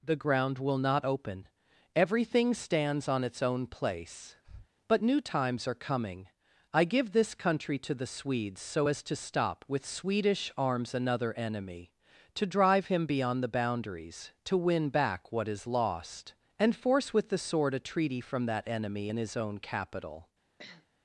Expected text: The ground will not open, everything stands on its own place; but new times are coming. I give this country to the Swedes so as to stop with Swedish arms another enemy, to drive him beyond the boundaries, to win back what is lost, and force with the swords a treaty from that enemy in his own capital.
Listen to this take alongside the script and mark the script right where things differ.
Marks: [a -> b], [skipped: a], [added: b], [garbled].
The ground will not open, everything stands on its own place; but new times are coming. I give this country to the Swedes so as to stop with Swedish arms another enemy, to drive him beyond the boundaries, to win back what is lost, and force with the [swords -> sword] a treaty from that enemy in his own capital.